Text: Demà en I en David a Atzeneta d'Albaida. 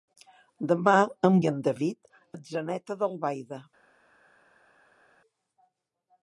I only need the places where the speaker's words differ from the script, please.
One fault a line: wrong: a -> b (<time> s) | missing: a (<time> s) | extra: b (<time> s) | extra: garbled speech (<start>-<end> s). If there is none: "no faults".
no faults